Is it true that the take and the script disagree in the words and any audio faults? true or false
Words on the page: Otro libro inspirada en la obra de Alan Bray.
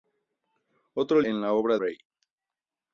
true